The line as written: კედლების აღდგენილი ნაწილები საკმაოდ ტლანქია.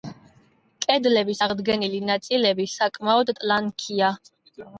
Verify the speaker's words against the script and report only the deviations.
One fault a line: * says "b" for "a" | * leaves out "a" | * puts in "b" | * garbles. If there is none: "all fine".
all fine